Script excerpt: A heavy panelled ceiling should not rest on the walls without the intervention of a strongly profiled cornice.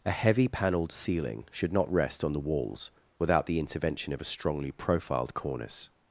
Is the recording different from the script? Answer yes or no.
no